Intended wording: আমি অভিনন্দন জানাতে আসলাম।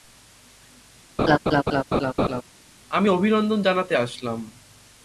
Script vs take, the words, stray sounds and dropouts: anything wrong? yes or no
yes